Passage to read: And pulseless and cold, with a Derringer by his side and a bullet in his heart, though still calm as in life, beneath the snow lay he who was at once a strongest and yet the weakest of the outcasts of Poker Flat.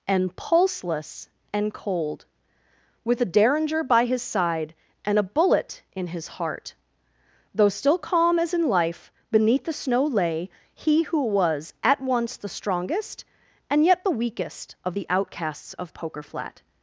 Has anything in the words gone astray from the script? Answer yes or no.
yes